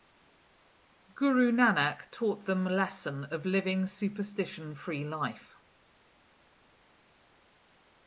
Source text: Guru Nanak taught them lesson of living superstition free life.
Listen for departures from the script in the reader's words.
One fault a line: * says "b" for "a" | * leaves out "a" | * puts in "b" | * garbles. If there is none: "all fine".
all fine